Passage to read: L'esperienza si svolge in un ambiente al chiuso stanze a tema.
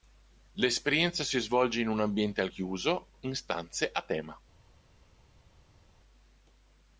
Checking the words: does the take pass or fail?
fail